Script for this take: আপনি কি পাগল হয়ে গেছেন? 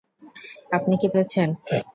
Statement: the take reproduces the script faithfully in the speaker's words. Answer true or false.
false